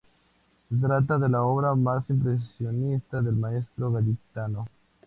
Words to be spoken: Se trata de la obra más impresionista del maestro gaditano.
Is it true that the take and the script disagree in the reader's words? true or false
false